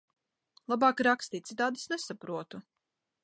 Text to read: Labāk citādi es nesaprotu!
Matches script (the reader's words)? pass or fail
fail